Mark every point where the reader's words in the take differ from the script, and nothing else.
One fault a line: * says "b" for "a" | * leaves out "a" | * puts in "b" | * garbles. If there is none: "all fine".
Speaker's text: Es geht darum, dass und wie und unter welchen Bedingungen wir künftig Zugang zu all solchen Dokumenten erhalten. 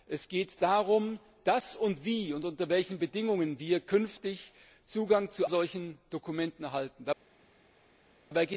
* leaves out "all"